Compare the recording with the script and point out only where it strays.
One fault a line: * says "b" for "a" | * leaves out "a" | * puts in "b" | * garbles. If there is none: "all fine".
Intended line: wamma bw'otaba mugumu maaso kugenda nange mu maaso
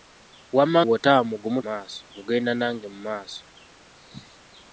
all fine